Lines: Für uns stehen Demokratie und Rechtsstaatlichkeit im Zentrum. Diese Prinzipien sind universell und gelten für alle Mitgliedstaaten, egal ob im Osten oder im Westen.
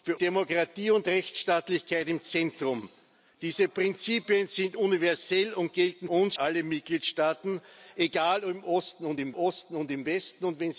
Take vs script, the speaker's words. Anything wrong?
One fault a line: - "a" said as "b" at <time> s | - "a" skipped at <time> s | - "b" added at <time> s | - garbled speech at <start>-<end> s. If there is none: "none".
- "uns stehen" skipped at 0.2 s
- "für" said as "uns" at 6.1 s
- "Osten oder im" added at 9.3 s